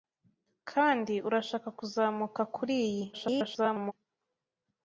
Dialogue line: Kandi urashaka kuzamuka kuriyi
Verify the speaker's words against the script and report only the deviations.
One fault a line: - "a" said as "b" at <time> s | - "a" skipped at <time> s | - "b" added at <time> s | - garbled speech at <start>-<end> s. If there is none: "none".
- garbled speech at 3.1-3.9 s